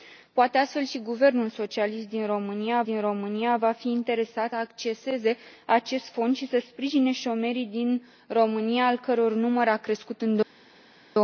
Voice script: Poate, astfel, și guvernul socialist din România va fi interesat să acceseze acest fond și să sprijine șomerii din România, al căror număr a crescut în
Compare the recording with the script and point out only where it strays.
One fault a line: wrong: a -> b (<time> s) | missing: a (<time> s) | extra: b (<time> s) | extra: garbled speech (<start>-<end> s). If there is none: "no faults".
extra: din România (2.8 s)
missing: să (4.5 s)